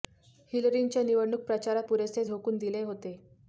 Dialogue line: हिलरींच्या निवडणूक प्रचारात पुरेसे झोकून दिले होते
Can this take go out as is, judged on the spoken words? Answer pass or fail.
pass